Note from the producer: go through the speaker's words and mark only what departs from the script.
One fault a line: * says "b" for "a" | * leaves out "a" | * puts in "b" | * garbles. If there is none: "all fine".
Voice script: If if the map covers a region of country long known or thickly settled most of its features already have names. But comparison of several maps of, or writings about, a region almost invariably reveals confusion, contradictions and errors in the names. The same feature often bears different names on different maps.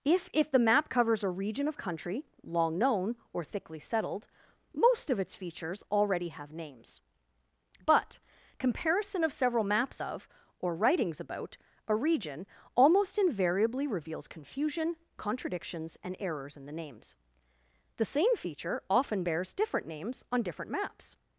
all fine